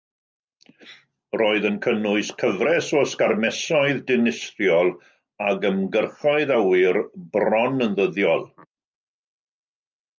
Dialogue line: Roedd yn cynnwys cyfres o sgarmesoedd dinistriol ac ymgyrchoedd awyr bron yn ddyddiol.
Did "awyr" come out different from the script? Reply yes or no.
no